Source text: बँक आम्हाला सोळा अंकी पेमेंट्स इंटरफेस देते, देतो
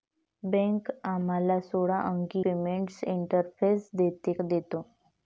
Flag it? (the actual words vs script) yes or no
no